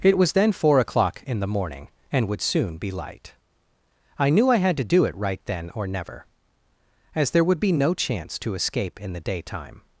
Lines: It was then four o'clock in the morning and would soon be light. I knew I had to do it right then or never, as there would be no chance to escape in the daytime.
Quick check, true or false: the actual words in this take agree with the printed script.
true